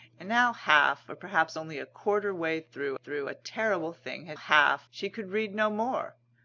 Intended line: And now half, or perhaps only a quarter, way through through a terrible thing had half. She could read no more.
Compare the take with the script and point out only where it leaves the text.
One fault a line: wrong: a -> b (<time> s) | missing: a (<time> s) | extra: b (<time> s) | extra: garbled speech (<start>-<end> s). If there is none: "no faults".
no faults